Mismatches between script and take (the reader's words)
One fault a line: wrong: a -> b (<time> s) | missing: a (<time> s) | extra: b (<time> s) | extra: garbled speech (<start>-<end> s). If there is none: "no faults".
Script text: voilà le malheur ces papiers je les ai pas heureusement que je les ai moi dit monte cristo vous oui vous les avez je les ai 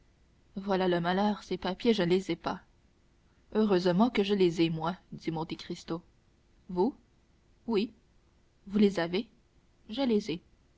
no faults